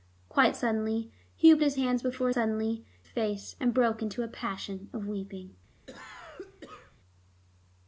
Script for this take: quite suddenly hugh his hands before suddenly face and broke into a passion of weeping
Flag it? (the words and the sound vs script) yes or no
yes